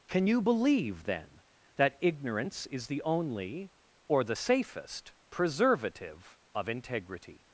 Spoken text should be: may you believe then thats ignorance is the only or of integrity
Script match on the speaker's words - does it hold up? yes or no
no